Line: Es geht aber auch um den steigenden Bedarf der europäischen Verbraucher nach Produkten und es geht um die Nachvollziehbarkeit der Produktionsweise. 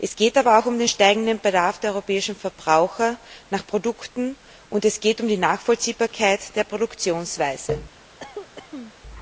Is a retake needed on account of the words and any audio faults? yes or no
yes